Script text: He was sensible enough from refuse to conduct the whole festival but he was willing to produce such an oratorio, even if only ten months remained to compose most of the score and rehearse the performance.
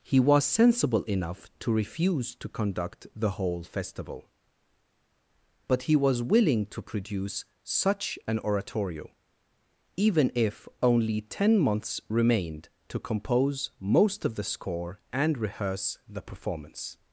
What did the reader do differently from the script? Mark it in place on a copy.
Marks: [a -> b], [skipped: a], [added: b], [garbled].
He was sensible enough [from -> to] refuse to conduct the whole festival but he was willing to produce such an oratorio, even if only ten months remained to compose most of the score and rehearse the performance.